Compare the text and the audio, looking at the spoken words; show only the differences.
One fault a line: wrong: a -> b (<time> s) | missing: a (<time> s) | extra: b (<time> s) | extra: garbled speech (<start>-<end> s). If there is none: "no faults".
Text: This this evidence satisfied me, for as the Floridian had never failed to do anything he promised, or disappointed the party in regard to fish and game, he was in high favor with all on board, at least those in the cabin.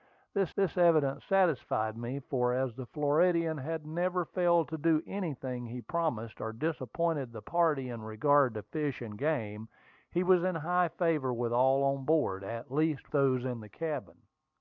no faults